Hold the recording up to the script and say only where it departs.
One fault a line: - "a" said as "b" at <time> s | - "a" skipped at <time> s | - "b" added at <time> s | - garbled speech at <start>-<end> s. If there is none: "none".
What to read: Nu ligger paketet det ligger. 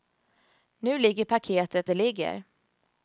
none